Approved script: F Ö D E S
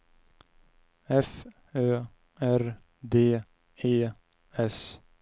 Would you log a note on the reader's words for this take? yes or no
yes